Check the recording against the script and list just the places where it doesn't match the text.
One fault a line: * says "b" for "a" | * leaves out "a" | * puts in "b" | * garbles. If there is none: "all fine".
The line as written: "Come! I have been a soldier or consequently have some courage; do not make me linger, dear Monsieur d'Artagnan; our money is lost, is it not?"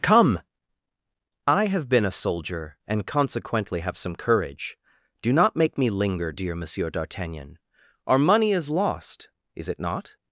* says "and" for "or"